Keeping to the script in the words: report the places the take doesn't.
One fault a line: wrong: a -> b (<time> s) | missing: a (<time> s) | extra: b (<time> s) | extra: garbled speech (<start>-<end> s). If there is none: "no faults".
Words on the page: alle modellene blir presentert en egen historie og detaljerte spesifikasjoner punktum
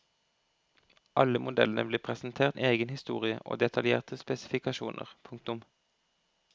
no faults